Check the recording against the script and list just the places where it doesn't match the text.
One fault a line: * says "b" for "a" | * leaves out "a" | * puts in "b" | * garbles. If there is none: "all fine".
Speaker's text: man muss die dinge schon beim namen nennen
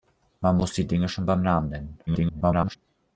* garbles